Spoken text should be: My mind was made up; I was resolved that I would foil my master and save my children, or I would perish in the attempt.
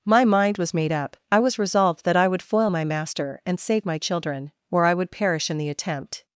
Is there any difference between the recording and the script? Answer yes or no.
no